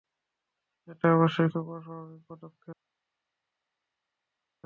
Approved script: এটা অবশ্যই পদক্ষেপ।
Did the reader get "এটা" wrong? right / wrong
right